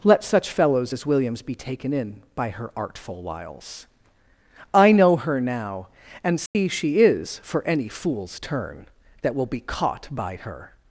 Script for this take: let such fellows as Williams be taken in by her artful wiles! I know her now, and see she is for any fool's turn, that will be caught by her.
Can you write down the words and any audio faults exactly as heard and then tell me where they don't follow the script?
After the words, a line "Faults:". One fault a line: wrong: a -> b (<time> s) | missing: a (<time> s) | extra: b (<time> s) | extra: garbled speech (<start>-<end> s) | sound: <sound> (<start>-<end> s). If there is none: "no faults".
let such fellows as Williams be taken in by her artful wiles! I know her now, and see she is for any fool's turn, that will be caught by her.
Faults:
sound: dropout (6.5-6.6 s)